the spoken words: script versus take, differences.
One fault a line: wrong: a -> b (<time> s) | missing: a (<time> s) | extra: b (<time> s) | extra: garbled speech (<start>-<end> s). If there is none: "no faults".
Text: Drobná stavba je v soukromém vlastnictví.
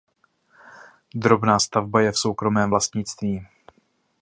no faults